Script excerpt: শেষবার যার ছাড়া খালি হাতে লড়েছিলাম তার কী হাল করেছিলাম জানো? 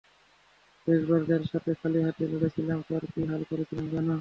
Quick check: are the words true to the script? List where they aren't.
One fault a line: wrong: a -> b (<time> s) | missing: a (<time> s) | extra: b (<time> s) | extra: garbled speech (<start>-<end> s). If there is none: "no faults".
wrong: ছাড়া -> সাথে (1.5 s)